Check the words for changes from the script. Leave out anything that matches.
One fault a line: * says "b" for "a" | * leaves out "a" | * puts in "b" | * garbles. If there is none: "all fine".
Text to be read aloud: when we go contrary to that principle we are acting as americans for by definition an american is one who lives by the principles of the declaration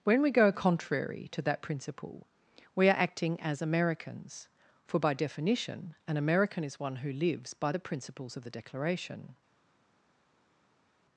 all fine